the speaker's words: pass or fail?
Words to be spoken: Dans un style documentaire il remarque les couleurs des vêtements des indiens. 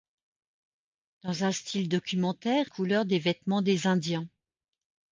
fail